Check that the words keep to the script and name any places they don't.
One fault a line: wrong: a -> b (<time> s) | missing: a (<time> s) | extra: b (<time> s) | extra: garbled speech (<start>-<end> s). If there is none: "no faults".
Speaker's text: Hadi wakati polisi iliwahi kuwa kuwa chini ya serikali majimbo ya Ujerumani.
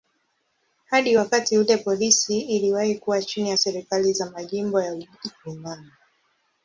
extra: ule (1.6 s)
missing: kuwa (3.2 s)
extra: za (4.1 s)